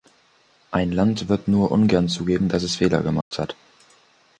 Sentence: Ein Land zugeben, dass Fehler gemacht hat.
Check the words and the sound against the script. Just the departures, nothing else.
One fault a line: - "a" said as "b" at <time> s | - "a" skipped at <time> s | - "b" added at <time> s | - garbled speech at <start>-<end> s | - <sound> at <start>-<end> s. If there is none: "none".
- "wird nur ungern" added at 1.3 s
- "es" added at 2.6 s
- dropout at 3.2-3.3 s